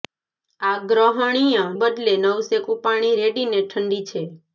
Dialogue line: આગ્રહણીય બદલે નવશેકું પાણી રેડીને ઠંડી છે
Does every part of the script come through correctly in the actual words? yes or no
yes